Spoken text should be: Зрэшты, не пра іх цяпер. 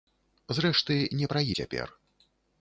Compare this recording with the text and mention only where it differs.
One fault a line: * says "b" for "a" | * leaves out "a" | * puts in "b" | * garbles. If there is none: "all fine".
* leaves out "іх"